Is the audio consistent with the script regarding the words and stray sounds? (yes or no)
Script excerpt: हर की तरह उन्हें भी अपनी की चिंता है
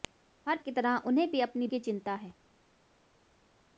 yes